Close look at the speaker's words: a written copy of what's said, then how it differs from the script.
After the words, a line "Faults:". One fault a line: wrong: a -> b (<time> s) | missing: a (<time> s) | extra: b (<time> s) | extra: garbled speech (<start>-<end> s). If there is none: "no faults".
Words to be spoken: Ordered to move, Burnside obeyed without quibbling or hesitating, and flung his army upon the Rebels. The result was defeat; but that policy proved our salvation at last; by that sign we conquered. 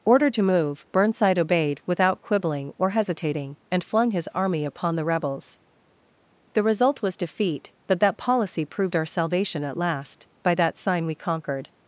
Ordered to move, Burnside obeyed without quibbling or hesitating, and flung his army upon the Rebels. The result was defeat; but that policy proved our salvation at last; by that sign we conquered.
Faults:
no faults